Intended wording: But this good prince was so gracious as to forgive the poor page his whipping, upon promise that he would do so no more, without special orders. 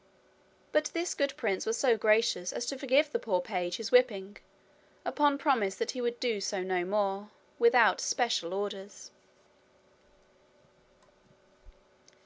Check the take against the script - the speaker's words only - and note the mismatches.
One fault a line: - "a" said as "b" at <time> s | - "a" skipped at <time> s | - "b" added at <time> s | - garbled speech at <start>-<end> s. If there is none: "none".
none